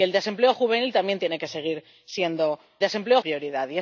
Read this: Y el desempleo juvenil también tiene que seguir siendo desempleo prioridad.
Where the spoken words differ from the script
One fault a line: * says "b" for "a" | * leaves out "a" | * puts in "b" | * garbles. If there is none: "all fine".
all fine